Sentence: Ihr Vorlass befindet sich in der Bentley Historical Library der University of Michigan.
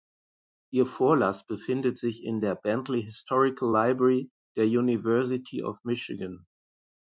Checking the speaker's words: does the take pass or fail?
pass